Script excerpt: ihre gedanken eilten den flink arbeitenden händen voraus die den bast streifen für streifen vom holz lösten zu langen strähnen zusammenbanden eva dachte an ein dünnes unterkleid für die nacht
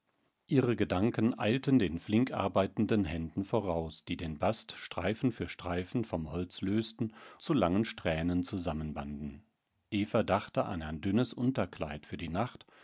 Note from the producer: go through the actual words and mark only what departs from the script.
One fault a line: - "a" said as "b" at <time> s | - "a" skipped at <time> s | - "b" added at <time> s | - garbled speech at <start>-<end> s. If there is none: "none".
none